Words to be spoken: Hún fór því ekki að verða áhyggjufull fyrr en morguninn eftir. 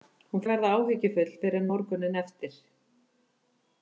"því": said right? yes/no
no